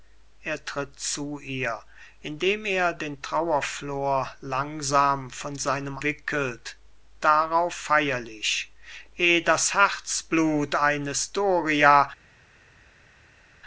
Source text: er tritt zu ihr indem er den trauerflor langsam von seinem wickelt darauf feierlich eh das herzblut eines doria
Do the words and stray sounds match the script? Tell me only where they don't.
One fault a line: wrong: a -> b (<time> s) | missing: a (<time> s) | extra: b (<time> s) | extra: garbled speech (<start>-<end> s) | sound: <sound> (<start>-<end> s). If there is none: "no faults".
no faults